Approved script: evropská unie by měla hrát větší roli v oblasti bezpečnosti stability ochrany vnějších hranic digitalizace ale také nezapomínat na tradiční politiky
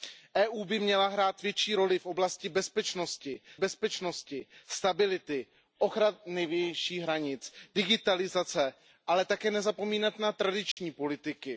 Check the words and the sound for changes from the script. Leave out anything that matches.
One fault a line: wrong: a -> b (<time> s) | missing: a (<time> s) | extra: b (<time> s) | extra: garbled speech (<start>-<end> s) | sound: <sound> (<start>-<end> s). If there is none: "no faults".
extra: bezpečnosti (3.6 s)
sound: dropout (10.7-10.8 s)